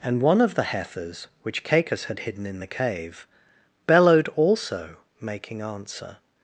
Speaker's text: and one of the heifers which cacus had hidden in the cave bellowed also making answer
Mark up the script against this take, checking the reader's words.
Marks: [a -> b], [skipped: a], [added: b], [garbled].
and one of the heifers which cacus had hidden in the cave bellowed also making answer